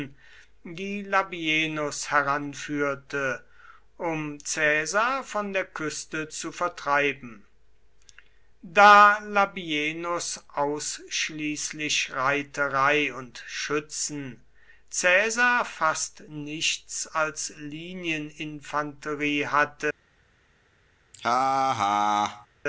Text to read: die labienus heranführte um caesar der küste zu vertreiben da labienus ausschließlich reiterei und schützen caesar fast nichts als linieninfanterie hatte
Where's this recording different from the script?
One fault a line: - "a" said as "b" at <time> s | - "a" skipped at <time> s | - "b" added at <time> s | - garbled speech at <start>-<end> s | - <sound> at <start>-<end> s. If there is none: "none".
- "von" added at 5.2 s
- laugh at 21.1-22.5 s